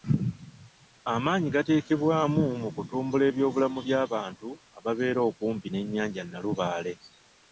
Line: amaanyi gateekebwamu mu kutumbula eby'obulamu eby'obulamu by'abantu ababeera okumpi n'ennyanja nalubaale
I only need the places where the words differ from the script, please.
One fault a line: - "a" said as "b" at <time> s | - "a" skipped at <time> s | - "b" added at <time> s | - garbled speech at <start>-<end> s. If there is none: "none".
- "eby'obulamu" skipped at 3.8 s